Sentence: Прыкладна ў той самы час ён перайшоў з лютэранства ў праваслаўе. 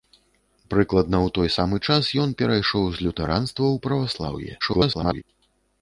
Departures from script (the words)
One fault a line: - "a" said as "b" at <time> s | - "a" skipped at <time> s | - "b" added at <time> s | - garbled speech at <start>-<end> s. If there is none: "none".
- garbled speech at 4.6-5.2 s